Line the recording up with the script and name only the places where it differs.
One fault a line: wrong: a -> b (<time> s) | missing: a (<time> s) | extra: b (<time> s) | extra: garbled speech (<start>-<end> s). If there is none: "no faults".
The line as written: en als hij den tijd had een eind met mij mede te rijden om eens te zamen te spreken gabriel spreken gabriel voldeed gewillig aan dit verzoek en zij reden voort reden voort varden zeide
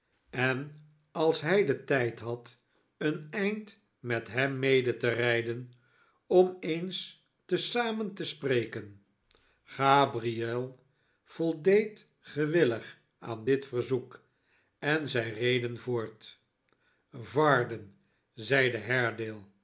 wrong: mij -> hem (4.3 s)
missing: spreken gabriel (10.8 s)
missing: reden voort (16.4 s)